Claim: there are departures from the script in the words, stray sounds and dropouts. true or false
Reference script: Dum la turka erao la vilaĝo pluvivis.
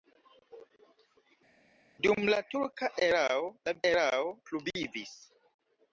true